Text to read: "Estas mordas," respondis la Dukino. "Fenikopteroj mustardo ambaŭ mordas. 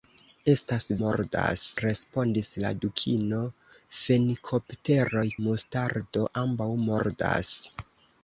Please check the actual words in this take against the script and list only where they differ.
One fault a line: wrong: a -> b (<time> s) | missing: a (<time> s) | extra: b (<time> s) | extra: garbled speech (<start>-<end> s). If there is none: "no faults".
no faults